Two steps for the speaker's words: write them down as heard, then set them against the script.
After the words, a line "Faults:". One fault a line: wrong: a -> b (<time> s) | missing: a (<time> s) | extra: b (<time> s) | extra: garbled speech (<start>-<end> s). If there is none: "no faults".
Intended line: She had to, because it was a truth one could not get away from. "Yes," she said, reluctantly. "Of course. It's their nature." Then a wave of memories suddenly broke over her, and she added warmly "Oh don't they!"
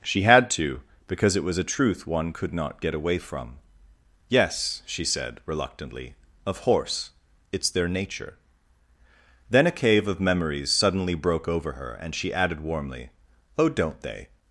She had to, because it was a truth one could not get away from. "Yes," she said, reluctantly. "Of horse. It's their nature." Then a cave of memories suddenly broke over her, and she added warmly "Oh don't they!"
Faults:
wrong: course -> horse (6.6 s)
wrong: wave -> cave (9.7 s)